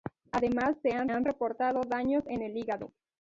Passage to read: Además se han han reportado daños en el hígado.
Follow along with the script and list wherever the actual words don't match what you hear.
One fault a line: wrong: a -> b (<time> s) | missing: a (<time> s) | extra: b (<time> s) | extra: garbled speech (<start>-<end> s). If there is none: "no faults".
no faults